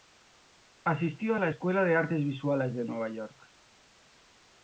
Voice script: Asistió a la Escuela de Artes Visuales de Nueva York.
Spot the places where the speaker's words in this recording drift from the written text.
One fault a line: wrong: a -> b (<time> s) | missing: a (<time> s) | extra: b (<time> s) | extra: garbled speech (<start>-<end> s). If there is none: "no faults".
no faults